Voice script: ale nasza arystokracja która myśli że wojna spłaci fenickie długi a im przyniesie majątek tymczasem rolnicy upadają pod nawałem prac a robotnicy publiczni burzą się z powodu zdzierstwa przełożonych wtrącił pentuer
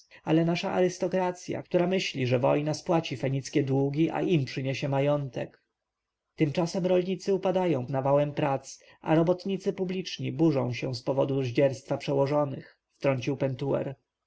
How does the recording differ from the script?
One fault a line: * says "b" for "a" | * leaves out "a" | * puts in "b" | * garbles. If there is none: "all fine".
* leaves out "pod"